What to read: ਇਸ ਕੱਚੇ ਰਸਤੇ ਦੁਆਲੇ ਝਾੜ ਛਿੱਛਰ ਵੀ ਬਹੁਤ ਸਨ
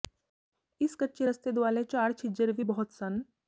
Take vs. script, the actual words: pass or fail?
pass